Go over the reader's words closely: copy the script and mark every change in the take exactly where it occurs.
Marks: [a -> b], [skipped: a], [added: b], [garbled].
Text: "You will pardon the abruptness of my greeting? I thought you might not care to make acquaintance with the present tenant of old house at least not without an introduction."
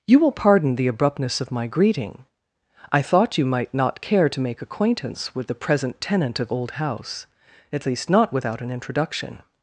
"You will pardon the abruptness of my greeting? I thought you might not care to make acquaintance with the present tenant of old house at least not without an introduction."